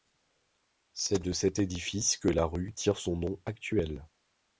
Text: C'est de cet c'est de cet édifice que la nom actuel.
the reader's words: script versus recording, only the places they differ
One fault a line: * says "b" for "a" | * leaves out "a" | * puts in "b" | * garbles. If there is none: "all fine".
* says "édifice que la rue tire son" for "c'est de cet édifice que la"